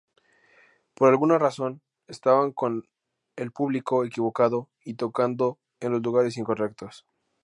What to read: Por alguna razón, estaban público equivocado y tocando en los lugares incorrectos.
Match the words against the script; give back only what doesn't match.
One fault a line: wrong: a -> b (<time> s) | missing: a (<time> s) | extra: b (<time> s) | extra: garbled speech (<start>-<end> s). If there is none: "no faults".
extra: con el (2.5 s)